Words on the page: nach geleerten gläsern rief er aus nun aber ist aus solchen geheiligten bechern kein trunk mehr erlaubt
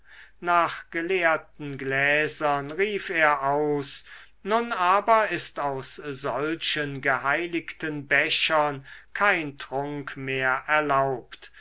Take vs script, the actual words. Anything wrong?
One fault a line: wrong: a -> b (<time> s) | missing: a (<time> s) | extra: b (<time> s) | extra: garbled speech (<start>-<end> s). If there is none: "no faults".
no faults